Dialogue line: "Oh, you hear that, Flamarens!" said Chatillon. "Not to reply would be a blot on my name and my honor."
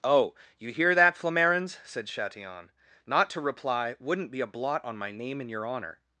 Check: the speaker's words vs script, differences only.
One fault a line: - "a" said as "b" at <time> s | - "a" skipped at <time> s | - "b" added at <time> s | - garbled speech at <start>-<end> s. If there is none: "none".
- "would" said as "wouldn't" at 4.0 s
- "my" said as "your" at 5.5 s